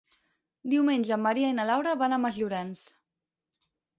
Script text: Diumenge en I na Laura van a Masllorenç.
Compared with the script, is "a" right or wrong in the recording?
right